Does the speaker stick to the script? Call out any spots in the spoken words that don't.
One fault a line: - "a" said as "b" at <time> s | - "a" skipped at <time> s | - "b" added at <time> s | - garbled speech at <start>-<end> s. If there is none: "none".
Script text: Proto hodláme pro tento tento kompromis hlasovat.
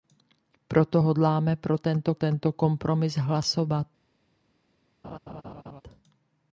none